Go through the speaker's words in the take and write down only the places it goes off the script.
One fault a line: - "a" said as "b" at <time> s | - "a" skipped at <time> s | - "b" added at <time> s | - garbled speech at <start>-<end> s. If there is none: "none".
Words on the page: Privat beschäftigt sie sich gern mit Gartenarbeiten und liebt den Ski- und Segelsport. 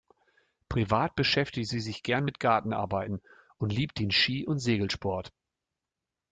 none